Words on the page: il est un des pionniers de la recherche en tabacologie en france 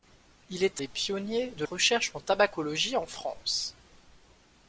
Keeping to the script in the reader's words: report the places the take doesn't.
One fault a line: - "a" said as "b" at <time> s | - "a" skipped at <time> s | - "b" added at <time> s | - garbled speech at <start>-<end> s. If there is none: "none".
- "un" skipped at 0.8 s
- "la" skipped at 1.6 s